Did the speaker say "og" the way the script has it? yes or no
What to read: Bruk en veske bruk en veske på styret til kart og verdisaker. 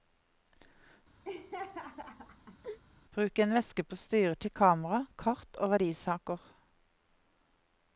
yes